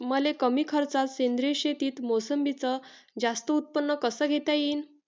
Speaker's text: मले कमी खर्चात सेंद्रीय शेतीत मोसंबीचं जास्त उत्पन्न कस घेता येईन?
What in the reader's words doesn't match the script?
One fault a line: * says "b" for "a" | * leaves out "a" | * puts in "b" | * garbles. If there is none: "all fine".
all fine